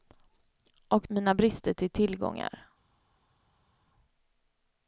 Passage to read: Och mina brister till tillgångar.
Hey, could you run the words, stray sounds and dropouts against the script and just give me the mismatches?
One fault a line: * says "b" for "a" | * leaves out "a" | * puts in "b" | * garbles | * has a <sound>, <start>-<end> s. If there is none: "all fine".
all fine